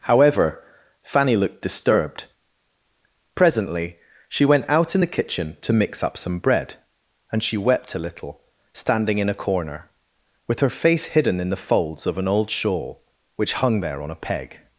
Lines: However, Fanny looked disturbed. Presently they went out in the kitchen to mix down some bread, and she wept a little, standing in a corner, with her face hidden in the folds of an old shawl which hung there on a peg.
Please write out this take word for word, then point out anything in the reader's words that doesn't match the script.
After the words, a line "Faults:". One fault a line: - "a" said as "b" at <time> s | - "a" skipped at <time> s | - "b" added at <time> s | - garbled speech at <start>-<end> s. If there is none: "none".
However, Fanny looked disturbed. Presently she went out in the kitchen to mix up some bread, and she wept a little, standing in a corner, with her face hidden in the folds of an old shawl which hung there on a peg.
Faults:
- "they" said as "she" at 4.3 s
- "down" said as "up" at 6.0 s